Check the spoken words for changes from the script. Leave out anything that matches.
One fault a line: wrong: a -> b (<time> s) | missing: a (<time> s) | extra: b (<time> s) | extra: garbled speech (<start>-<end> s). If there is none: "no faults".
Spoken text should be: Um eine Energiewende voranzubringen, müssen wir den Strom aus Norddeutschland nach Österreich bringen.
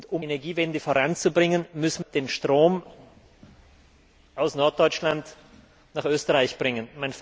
missing: eine (0.2 s)
missing: wir (2.0 s)